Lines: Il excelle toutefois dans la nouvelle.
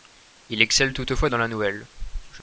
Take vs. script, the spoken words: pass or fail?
pass